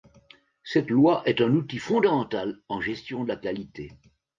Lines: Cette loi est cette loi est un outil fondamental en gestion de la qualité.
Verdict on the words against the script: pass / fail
fail